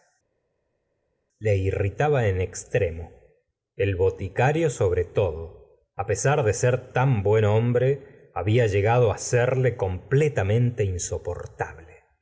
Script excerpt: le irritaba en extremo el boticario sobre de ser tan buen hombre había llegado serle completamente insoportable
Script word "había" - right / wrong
right